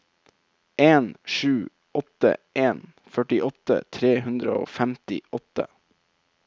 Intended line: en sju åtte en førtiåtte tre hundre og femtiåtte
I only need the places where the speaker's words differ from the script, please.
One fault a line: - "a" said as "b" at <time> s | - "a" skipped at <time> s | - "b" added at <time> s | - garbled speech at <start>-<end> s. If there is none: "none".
none